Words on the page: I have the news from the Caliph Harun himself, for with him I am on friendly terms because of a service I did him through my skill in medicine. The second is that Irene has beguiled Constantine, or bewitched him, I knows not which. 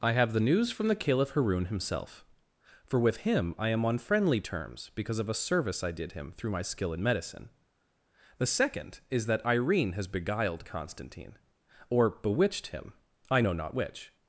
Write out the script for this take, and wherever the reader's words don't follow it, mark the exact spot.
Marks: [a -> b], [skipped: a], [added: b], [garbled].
I have the news from the Caliph Harun himself, for with him I am on friendly terms because of a service I did him through my skill in medicine. The second is that Irene has beguiled Constantine, or bewitched him, I [knows -> know] not which.